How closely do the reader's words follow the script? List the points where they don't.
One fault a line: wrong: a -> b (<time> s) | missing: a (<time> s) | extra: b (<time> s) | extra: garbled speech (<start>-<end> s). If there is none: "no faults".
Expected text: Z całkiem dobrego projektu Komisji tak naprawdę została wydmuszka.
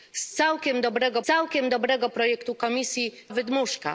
extra: całkiem dobrego (1.2 s)
missing: tak naprawdę została (3.1 s)